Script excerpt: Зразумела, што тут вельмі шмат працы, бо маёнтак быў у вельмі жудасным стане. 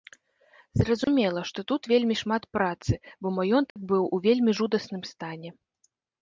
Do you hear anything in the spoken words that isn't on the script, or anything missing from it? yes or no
no